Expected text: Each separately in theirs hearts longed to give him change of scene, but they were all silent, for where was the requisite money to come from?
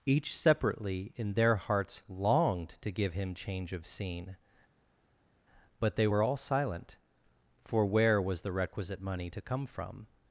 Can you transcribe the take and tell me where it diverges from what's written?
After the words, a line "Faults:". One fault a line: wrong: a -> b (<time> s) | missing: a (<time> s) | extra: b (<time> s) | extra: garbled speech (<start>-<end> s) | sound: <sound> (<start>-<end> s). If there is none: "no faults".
Each separately in their hearts longed to give him change of scene, but they were all silent, for where was the requisite money to come from?
Faults:
wrong: theirs -> their (1.3 s)